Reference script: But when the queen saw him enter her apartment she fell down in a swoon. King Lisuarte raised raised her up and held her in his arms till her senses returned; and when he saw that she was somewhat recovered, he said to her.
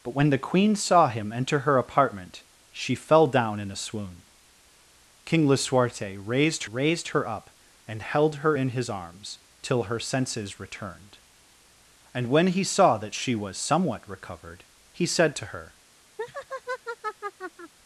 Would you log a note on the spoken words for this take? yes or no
no